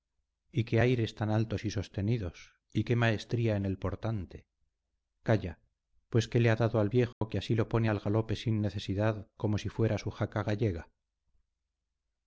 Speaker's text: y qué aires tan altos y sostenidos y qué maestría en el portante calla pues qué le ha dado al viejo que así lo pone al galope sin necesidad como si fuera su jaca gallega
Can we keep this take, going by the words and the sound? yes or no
no